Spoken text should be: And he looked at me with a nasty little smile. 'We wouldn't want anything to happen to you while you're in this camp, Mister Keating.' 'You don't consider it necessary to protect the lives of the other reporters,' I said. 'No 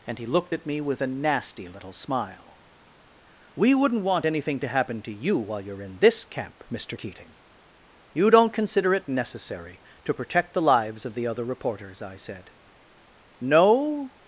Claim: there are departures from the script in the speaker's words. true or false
false